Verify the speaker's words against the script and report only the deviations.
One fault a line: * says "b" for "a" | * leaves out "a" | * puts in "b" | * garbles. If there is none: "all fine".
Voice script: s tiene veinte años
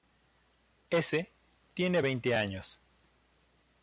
all fine